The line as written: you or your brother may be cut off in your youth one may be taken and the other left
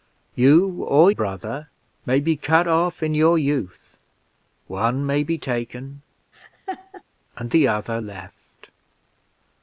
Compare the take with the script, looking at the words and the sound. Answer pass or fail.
fail